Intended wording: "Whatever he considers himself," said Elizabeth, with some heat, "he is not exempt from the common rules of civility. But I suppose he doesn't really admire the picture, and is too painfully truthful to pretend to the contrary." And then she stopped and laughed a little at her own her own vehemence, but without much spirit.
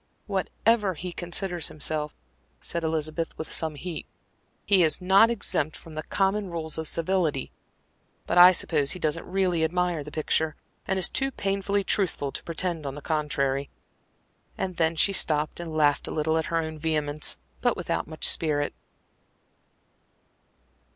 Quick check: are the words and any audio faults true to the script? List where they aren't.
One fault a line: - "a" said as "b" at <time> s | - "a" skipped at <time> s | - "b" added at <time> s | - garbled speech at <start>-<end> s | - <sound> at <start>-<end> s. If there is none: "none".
- "her own" skipped at 16.8 s